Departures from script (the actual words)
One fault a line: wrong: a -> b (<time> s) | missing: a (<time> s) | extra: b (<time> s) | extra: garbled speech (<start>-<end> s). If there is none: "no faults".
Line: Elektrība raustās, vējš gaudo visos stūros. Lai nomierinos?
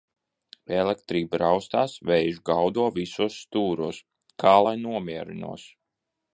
extra: Kā (4.5 s)